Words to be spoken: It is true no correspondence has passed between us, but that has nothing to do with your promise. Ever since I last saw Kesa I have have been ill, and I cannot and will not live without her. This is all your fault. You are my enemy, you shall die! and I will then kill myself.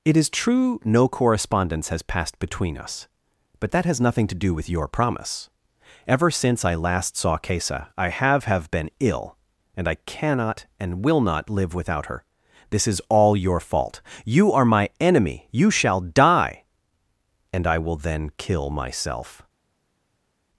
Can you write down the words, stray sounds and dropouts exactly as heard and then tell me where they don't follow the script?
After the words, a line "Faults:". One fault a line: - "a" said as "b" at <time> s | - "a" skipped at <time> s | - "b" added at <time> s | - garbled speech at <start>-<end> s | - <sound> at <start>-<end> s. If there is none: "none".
It is true no correspondence has passed between us, but that has nothing to do with your promise. Ever since I last saw Kesa I have have been ill, and I cannot and will not live without her. This is all your fault. You are my enemy, you shall die! and I will then kill myself.
Faults:
none